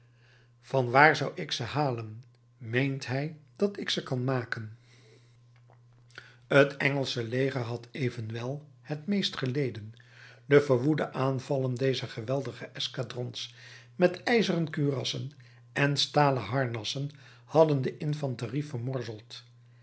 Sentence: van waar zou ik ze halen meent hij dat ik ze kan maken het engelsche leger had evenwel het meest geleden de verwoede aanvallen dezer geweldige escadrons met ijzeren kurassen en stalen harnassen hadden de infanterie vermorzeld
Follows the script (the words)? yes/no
yes